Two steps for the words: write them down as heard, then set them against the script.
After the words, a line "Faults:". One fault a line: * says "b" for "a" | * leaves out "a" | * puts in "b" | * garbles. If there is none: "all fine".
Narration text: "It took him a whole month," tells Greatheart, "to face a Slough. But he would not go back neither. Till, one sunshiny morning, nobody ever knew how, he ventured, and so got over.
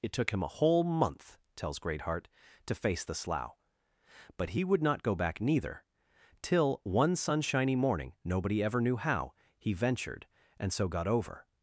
"It took him a whole month," tells Greatheart, "to face the Slough. But he would not go back neither. Till, one sunshiny morning, nobody ever knew how, he ventured, and so got over.
Faults:
* says "the" for "a"